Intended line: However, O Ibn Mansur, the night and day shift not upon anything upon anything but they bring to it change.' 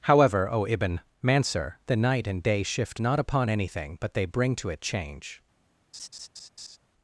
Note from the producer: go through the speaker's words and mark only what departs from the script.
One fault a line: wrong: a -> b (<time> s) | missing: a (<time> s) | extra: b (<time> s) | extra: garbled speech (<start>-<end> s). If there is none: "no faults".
missing: upon anything (4.0 s)